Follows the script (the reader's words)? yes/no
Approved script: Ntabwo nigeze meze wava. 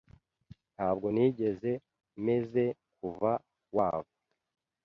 no